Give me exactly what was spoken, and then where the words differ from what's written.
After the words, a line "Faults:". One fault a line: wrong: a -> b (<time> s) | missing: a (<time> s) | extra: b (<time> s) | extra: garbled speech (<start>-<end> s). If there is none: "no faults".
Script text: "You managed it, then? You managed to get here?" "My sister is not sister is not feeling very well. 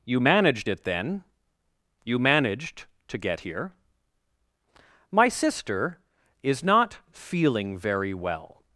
"You managed it, then? You managed to get here?" "My sister is not feeling very well.
Faults:
missing: sister is not (7.0 s)